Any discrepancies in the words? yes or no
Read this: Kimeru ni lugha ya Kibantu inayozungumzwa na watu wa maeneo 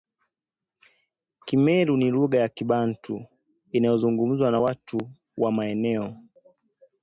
no